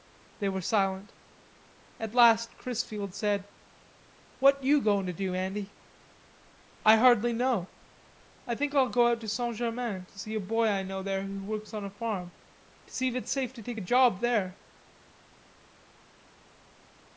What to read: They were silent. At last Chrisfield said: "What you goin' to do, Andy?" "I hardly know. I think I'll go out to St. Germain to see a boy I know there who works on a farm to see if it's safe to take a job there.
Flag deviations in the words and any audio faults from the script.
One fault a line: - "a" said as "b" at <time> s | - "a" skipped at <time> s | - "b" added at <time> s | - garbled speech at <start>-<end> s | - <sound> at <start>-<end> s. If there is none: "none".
none